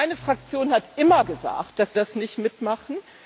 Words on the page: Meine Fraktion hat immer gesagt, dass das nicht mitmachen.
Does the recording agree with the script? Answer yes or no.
yes